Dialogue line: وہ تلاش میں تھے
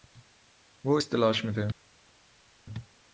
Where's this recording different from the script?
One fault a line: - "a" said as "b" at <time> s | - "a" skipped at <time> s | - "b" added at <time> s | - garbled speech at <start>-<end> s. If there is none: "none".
- "اس" added at 0.9 s